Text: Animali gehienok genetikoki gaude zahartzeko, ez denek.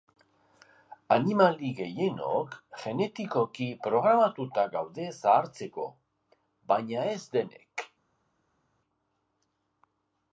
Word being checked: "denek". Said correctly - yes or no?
yes